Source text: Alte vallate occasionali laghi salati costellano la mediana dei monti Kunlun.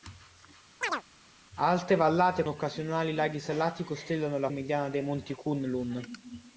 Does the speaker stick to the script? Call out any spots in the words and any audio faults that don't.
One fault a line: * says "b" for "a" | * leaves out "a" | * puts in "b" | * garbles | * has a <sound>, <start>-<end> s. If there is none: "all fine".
* has a chirp, 0.8-1.0 s